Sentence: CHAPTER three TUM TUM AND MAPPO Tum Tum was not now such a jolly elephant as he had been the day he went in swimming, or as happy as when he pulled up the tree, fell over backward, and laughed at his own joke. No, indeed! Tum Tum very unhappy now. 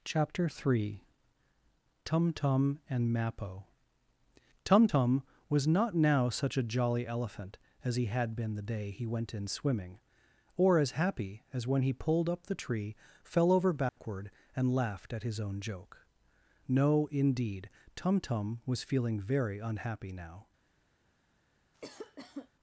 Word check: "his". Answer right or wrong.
right